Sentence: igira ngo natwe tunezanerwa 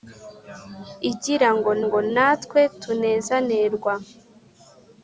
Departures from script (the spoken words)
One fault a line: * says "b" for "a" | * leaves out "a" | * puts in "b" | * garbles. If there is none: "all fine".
* puts in "ngo"